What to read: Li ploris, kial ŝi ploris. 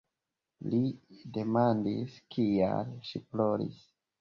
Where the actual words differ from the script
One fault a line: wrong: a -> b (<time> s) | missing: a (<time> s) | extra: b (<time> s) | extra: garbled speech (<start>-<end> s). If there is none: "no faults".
wrong: ploris -> demandis (1.4 s)